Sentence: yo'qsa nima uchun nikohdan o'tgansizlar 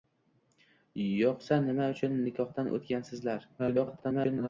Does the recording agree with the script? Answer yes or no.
no